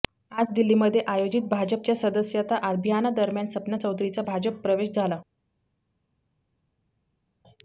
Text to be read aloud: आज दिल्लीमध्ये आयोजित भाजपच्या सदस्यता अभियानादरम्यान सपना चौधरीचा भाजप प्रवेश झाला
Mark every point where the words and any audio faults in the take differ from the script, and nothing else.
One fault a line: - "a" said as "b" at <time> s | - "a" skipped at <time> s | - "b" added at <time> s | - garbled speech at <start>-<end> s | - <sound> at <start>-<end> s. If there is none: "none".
none